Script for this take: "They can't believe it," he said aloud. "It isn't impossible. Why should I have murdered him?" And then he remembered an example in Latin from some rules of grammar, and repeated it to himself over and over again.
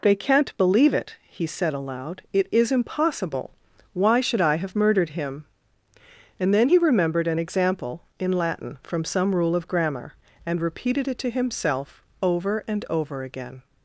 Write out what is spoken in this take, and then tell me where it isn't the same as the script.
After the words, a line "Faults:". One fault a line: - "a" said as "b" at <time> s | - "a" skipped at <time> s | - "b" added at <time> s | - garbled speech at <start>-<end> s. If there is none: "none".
"They can't believe it," he said aloud. "It is impossible. Why should I have murdered him?" And then he remembered an example in Latin from some rule of grammar, and repeated it to himself over and over again.
Faults:
- "isn't" said as "is" at 2.5 s
- "rules" said as "rule" at 9.3 s